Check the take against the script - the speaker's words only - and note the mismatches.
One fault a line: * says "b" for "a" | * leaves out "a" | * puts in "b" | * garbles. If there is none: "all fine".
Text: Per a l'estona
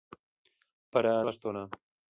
all fine